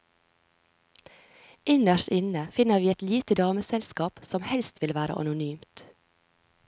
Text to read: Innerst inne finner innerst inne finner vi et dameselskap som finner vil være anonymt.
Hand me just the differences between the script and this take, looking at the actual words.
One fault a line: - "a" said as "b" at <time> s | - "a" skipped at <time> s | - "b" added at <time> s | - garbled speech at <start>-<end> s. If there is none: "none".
- "innerst inne finner" skipped at 2.8 s
- "lite" added at 3.0 s
- "finner" said as "helst" at 4.4 s